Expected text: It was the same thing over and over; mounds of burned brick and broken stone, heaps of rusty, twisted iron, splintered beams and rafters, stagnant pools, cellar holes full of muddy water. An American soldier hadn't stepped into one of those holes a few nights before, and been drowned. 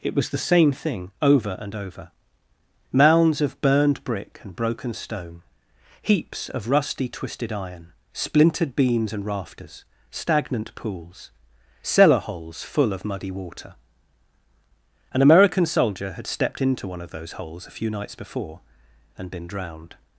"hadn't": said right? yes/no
no